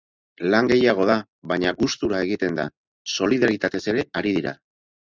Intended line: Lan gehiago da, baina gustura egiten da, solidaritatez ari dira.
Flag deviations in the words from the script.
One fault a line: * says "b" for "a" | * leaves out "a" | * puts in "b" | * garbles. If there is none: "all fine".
* puts in "ere"